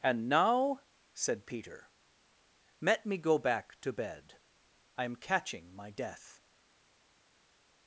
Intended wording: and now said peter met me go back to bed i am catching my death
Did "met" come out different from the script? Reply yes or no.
yes